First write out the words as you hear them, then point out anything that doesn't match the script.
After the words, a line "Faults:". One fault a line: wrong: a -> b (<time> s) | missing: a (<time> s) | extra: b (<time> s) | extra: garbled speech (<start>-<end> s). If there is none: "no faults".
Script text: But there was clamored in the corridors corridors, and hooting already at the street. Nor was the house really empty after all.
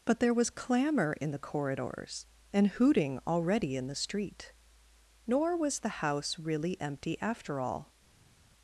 But there was clamor in the corridors, and hooting already in the street. Nor was the house really empty after all.
Faults:
wrong: clamored -> clamor (0.5 s)
missing: corridors (2.3 s)
wrong: at -> in (3.8 s)